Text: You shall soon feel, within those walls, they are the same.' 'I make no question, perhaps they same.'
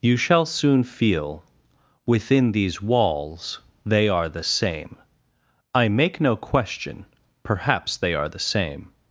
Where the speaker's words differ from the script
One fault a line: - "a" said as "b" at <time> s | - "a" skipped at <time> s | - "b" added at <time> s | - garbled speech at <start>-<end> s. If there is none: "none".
- "those" said as "these" at 2.5 s
- "are the" added at 8.1 s